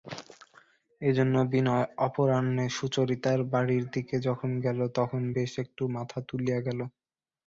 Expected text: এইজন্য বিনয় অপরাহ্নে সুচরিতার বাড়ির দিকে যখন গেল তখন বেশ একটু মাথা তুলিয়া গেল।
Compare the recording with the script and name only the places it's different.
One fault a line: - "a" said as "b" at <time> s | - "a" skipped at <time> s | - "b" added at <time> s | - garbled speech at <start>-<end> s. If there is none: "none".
none